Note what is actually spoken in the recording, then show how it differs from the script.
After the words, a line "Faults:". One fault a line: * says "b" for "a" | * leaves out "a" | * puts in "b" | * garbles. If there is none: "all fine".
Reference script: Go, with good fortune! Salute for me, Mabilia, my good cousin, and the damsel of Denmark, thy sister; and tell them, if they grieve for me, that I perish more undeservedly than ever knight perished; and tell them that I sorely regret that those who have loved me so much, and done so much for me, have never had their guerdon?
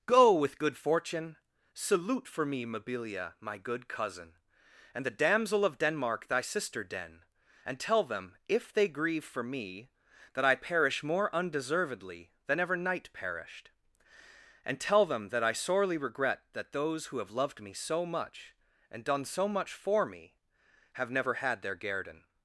Go, with good fortune! Salute for me, Mabilia, my good cousin, and the damsel of Denmark, thy sister; den and tell them, if they grieve for me, that I perish more undeservedly than ever knight perished; and tell them that I sorely regret that those who have loved me so much, and done so much for me, have never had their guerdon?
Faults:
* puts in "den"